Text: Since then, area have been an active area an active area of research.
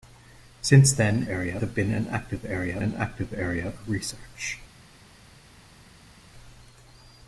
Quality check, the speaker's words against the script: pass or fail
pass